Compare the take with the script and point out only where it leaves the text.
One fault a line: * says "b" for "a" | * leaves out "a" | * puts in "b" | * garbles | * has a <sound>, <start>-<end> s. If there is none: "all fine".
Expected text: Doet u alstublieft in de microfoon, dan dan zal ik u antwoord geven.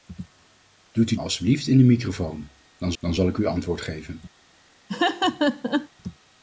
* has a laugh, 4.9-5.9 s